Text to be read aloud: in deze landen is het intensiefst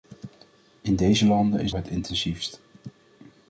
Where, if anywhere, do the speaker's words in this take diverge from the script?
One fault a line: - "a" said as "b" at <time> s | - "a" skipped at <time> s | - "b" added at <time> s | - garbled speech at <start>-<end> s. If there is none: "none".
none